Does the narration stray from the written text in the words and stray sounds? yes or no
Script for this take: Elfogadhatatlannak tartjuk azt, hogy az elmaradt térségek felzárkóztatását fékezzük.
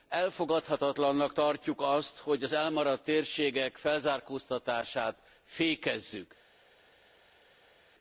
no